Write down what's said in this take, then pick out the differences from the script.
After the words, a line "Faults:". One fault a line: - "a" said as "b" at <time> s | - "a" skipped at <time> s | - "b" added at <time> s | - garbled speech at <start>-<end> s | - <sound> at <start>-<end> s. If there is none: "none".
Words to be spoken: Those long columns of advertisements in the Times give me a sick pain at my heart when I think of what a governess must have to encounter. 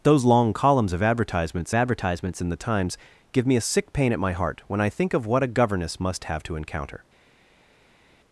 Those long columns of advertisements advertisements in the Times give me a sick pain at my heart when I think of what a governess must have to encounter.
Faults:
- "advertisements" added at 1.7 s